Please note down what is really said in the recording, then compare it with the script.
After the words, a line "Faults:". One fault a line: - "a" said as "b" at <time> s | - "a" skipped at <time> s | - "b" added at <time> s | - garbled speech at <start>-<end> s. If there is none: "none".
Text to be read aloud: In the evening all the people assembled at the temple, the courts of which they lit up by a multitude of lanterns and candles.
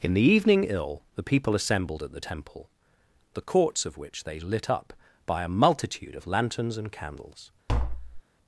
In the evening ill the people assembled at the temple, the courts of which they lit up by a multitude of lanterns and candles.
Faults:
- "all" said as "ill" at 0.6 s